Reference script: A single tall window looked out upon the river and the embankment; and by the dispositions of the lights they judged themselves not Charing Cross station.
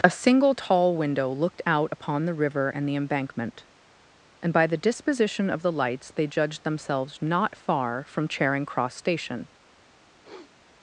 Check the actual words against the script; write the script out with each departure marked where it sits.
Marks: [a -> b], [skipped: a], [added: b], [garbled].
A single tall window looked out upon the river and the embankment; and by the [dispositions -> disposition] of the lights they judged themselves not [added: far from] Charing Cross station.